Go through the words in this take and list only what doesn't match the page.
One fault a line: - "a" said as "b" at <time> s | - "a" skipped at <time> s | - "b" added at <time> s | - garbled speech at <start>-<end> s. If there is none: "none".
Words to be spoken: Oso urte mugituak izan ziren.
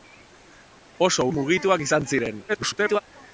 - "urte" skipped at 1.2 s
- garbled speech at 2.5-3.0 s